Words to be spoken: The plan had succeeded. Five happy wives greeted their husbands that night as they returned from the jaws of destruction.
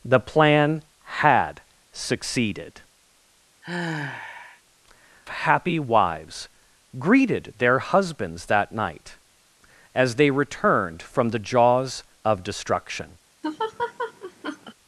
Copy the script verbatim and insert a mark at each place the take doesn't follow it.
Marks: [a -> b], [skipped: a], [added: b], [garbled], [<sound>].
The plan had succeeded. [skipped: Five] [sigh] happy wives greeted their husbands that night as they returned from the jaws of destruction. [laugh]